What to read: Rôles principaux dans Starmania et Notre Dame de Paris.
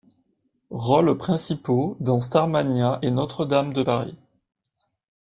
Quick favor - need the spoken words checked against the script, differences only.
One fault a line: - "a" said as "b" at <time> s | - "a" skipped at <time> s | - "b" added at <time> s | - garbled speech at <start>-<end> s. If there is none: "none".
none